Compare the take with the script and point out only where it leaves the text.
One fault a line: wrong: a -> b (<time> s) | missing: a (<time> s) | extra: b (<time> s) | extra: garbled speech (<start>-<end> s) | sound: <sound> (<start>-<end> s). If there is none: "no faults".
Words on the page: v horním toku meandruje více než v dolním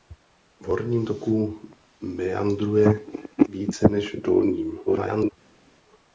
extra: garbled speech (4.9-5.3 s)